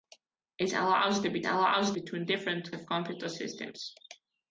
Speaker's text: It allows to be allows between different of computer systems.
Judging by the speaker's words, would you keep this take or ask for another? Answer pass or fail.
pass